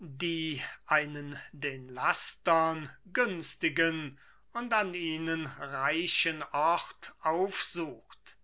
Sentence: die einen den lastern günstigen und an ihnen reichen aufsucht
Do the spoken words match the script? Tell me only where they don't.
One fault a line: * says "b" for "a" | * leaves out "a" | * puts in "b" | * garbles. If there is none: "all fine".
* puts in "ort"